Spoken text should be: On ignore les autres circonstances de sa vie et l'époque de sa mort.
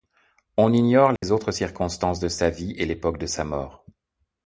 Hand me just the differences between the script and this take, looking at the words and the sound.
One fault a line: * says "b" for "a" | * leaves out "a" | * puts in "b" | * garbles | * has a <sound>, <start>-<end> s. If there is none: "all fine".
* has a dropout, 1.2-1.2 s